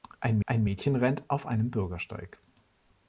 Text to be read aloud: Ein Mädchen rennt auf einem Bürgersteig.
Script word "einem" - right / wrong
right